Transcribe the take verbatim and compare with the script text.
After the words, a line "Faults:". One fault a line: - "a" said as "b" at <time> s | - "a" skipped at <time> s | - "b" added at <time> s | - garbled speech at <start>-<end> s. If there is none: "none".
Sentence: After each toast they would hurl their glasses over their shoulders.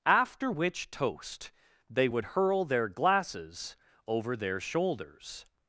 After which toast they would hurl their glasses over their shoulders.
Faults:
- "each" said as "which" at 0.5 s